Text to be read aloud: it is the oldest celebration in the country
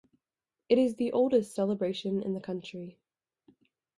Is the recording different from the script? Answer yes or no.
no